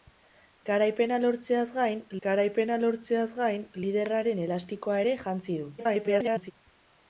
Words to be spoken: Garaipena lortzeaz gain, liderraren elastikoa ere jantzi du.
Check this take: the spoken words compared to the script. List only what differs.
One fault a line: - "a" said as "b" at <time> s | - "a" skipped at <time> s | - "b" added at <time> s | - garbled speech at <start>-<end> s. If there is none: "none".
- "garaipena lortzeaz gain" added at 2.3 s
- garbled speech at 5.8-6.5 s